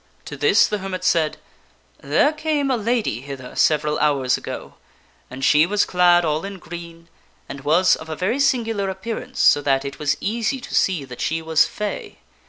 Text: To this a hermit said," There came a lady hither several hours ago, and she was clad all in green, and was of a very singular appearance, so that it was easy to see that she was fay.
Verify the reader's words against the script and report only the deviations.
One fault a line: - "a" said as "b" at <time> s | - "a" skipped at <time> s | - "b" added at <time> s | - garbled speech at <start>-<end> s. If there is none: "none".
- "a" said as "the" at 0.7 s